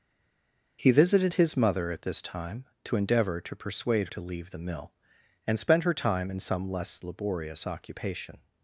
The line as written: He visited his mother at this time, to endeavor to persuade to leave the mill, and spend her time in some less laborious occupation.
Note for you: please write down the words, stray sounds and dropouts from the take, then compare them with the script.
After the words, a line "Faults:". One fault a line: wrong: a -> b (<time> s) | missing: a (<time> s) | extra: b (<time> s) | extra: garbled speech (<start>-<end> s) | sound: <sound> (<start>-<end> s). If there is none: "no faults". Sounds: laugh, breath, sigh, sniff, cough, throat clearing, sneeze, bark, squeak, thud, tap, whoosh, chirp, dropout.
He visited his mother at this time, to endeavor to persuade to leave the mill, and spend her time in some less laborious occupation.
Faults:
no faults